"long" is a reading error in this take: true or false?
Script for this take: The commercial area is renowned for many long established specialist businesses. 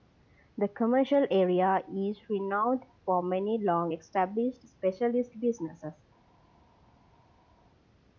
false